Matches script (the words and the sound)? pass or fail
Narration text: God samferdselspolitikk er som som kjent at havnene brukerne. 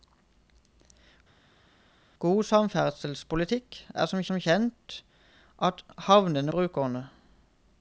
pass